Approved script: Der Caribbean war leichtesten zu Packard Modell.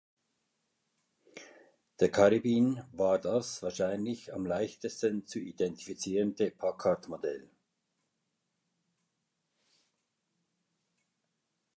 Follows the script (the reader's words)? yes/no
no